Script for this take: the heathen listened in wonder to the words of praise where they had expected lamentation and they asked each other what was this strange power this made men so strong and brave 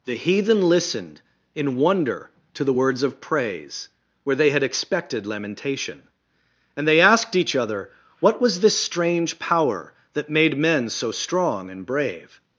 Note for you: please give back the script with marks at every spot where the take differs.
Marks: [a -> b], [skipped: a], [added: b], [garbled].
the heathen listened in wonder to the words of praise where they had expected lamentation and they asked each other what was this strange power [this -> that] made men so strong and brave